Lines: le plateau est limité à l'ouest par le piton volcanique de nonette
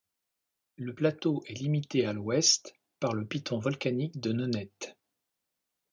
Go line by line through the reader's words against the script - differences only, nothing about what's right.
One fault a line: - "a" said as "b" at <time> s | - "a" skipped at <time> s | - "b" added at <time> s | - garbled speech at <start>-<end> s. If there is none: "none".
none